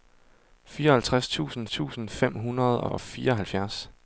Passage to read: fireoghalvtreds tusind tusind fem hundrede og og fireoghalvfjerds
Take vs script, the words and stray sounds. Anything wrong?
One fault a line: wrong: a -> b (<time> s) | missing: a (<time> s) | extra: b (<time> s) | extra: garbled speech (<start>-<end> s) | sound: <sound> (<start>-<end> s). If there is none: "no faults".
no faults